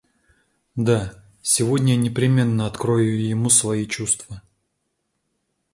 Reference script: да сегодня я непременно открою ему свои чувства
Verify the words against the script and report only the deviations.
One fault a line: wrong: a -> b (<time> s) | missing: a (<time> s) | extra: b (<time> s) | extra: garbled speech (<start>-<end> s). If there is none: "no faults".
no faults